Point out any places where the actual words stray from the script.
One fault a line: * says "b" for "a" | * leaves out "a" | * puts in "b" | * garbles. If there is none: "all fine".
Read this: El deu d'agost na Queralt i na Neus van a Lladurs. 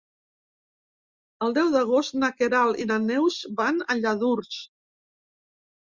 all fine